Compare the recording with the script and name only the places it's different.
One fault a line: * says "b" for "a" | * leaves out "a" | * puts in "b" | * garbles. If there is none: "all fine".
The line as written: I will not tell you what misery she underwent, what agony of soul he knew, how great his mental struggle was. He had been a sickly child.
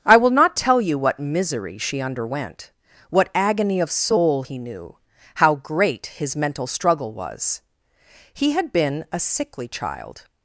all fine